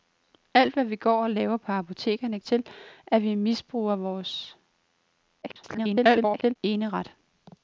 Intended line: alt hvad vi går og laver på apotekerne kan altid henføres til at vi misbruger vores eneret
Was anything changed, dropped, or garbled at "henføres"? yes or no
yes